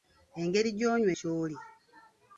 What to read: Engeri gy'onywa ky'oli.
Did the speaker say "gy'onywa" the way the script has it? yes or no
yes